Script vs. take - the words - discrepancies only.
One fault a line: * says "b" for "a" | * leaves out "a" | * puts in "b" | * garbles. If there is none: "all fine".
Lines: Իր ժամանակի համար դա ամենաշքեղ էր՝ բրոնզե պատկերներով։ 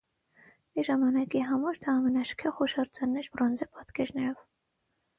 * puts in "հուշարձանն"